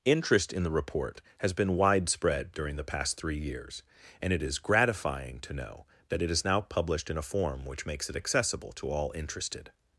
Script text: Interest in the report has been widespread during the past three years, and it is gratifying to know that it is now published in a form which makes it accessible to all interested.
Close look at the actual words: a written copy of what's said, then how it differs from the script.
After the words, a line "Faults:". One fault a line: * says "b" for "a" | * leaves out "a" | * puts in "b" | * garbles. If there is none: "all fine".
Interest in the report has been widespread during the past three years, and it is gratifying to know that it is now published in a form which makes it accessible to all interested.
Faults:
all fine